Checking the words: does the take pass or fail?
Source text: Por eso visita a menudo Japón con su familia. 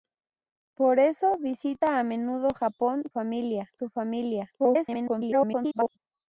fail